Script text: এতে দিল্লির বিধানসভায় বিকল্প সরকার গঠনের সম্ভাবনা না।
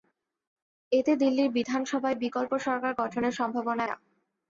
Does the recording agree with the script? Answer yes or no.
yes